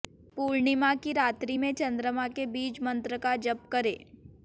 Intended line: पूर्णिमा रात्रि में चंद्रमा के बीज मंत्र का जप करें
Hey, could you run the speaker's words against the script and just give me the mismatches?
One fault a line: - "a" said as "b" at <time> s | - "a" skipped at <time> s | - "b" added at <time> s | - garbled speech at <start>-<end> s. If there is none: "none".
- "की" added at 0.9 s